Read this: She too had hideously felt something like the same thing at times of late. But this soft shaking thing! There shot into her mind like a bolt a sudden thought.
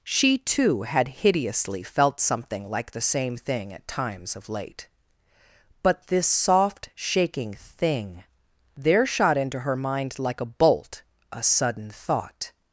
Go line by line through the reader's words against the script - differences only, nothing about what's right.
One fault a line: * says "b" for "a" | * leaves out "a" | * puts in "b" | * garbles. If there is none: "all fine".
all fine